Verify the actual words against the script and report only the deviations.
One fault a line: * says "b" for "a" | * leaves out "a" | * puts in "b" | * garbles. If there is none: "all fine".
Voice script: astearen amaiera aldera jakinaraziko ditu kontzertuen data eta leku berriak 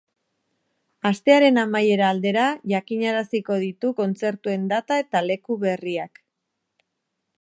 all fine